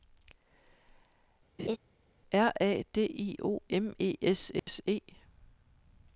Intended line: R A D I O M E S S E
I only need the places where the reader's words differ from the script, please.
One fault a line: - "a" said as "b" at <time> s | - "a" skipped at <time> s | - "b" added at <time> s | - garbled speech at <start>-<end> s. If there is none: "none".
none